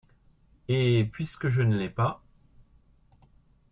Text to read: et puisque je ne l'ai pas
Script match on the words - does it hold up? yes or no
yes